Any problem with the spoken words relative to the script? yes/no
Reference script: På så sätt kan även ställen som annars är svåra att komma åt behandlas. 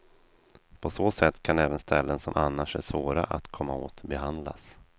no